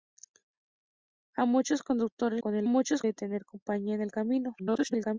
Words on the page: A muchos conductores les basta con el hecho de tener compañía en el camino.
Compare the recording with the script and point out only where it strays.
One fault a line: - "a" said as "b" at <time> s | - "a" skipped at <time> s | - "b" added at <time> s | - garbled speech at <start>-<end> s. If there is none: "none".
- "les basta" skipped at 2.4 s
- "hecho" said as "muchos" at 2.7 s
- garbled speech at 4.6-5.2 s